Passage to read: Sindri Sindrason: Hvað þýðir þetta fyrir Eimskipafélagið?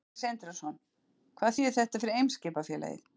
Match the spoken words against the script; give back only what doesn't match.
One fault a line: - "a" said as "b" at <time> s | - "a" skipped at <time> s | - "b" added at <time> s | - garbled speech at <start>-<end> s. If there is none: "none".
none